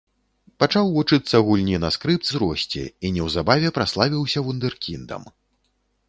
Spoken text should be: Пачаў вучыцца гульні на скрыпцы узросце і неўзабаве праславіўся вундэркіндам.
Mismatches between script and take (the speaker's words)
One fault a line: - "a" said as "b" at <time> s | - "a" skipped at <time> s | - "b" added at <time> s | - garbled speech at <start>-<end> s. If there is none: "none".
none